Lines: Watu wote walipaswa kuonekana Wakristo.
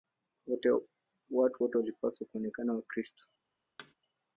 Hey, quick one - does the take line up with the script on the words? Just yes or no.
yes